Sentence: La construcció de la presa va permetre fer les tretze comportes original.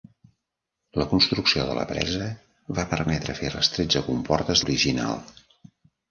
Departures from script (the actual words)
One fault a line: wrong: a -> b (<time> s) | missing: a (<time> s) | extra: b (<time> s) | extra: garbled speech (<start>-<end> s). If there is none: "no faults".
no faults